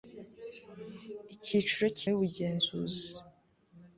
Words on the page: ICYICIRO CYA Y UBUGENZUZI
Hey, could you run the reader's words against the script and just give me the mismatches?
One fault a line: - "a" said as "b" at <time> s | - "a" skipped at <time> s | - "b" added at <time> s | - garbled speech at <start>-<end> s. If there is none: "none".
none